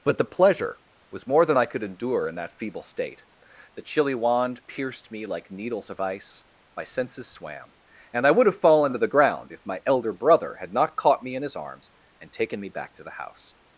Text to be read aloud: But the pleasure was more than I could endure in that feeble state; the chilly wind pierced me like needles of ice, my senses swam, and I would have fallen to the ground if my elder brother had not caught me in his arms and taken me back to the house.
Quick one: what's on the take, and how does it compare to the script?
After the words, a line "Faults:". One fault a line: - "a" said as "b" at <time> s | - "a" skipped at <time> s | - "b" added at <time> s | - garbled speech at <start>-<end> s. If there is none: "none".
But the pleasure was more than I could endure in that feeble state; the chilly wand pierced me like needles of ice, my senses swam, and I would have fallen to the ground if my elder brother had not caught me in his arms and taken me back to the house.
Faults:
- "wind" said as "wand" at 4.2 s